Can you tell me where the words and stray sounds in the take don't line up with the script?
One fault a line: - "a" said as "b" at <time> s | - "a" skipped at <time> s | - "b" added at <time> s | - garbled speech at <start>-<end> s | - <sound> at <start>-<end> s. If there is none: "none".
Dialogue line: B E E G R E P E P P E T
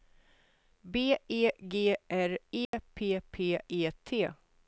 - "E" skipped at 1.5 s
- dropout at 2.7-2.7 s
- "E P" skipped at 3.2 s